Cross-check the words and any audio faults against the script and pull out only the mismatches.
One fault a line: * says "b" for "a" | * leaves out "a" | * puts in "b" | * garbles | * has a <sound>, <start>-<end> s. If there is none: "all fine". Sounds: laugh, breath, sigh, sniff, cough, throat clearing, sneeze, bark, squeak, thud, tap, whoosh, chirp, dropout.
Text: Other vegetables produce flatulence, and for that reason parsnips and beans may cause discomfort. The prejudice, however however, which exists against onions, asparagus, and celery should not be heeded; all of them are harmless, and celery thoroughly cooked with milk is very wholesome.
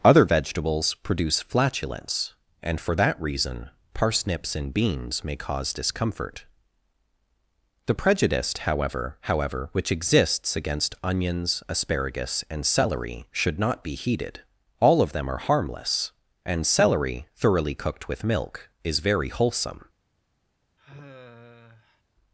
* has a sigh, 20.8-22.0 s